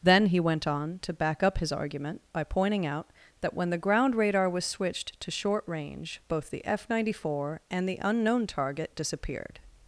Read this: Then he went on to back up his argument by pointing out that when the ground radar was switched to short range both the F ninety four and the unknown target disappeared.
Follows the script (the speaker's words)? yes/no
yes